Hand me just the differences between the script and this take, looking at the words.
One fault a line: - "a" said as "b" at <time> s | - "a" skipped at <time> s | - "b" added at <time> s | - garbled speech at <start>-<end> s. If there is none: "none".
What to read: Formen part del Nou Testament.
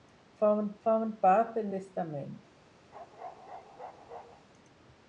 - "formen" added at 0.9 s
- "Nou" skipped at 1.7 s